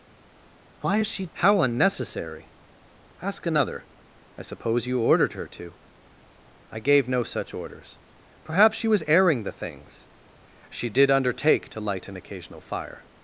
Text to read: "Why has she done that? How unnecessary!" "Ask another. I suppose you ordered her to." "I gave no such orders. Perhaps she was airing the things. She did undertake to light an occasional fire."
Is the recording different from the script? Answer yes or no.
yes